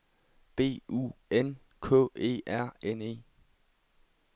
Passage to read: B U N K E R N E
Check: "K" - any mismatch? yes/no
no